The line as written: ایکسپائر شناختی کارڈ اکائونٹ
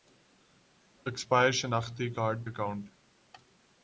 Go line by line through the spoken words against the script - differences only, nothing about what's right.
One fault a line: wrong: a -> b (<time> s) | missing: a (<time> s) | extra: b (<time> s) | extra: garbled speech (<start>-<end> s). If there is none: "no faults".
no faults